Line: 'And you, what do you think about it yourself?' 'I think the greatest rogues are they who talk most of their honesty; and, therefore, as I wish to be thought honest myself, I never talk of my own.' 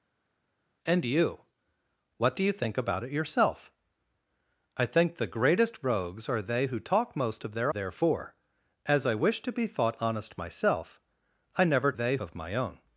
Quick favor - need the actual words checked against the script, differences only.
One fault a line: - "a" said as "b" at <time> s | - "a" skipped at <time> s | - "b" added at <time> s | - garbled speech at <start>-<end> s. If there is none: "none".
- "honesty and" skipped at 7.7 s
- "talk" said as "they" at 11.9 s